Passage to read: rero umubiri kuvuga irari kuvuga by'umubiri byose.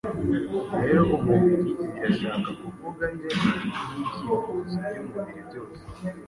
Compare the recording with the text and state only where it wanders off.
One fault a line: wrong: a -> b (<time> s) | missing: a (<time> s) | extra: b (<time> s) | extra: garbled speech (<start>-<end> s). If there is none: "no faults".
extra: birashaka (1.9 s)
wrong: kuvuga -> n'ibyifuzo (3.7 s)